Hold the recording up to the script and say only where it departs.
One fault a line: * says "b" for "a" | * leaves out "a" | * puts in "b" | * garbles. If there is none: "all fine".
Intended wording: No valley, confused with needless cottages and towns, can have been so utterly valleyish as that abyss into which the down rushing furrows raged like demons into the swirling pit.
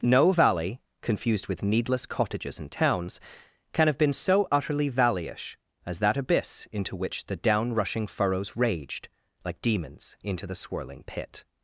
all fine